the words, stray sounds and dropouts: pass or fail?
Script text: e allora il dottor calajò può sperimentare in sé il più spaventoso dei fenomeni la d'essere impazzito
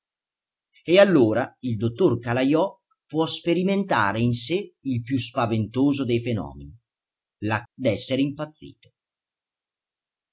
pass